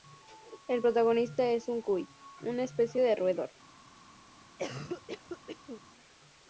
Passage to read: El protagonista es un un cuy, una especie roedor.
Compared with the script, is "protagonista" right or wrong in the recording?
right